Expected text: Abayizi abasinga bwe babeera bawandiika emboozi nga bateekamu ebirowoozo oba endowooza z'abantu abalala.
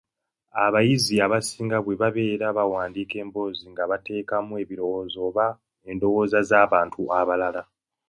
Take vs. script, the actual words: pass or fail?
pass